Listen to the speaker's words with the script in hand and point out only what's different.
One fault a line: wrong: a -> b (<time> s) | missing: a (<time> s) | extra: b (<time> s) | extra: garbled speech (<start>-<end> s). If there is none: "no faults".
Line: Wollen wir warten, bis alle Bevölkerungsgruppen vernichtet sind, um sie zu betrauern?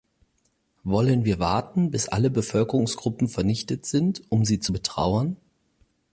no faults